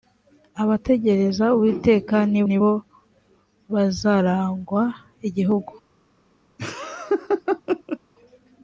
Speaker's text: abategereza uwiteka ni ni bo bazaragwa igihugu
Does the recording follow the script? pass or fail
pass